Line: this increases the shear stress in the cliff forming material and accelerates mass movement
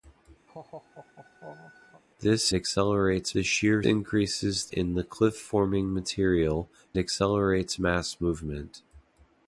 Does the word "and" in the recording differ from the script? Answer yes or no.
yes